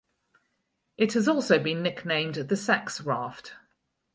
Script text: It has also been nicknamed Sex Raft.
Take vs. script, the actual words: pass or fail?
fail